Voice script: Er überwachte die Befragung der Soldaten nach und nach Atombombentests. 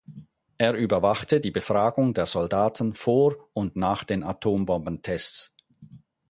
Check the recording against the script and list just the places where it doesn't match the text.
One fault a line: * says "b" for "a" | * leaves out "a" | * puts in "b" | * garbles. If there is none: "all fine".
* says "vor" for "nach"
* puts in "den"